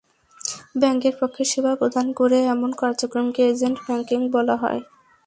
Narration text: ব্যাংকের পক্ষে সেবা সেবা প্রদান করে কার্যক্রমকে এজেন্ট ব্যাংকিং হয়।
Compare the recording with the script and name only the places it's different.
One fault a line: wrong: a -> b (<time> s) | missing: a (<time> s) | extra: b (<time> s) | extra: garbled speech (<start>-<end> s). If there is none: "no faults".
missing: সেবা (1.7 s)
extra: এমন (2.5 s)
extra: বলা (4.3 s)